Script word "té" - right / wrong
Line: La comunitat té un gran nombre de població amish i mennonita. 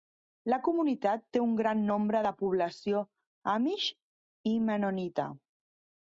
right